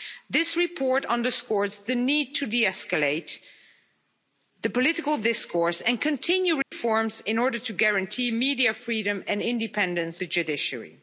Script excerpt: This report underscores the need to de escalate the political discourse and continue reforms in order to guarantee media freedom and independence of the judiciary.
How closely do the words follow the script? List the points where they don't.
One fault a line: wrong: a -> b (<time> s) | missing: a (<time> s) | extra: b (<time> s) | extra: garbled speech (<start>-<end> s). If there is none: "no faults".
missing: of (10.2 s)